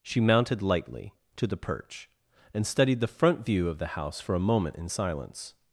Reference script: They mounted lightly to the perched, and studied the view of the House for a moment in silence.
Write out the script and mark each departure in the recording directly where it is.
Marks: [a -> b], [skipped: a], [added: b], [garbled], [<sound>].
[They -> She] mounted lightly to the [perched, -> perch] and studied the [added: front] view of the House for a moment in silence.